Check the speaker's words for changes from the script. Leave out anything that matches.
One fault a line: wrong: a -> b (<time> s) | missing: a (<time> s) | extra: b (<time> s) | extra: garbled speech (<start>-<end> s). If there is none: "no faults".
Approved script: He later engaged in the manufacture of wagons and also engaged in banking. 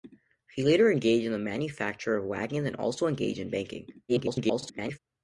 extra: garbled speech (4.1-5.0 s)